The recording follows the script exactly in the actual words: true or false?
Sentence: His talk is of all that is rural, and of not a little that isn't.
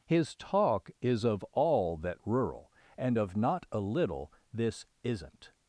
false